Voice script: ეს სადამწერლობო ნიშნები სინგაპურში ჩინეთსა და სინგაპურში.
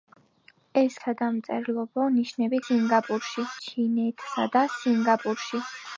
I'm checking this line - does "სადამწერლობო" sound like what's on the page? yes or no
yes